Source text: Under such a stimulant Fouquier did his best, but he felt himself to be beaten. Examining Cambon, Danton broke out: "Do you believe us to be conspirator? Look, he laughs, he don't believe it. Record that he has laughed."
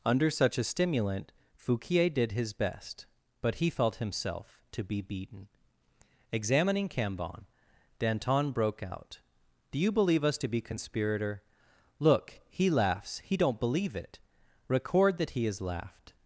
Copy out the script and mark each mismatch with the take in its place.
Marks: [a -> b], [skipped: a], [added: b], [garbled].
Under such a stimulant Fouquier did his best, but he felt himself to be beaten. Examining Cambon, Danton broke out: "Do you believe us to be conspirator? Look, he laughs, he don't believe it. Record that he has laughed."